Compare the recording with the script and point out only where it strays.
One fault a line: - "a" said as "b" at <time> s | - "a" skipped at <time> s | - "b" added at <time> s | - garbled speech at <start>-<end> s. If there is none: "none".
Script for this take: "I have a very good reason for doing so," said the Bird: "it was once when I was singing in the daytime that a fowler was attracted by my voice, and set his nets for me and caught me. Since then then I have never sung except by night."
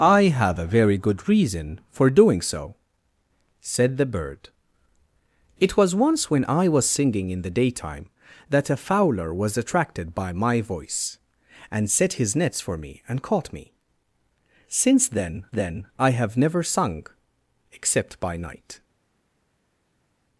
none